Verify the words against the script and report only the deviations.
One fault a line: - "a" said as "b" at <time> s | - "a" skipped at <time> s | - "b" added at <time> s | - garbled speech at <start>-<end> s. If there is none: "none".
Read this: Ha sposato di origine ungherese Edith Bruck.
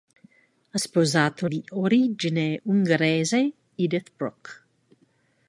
none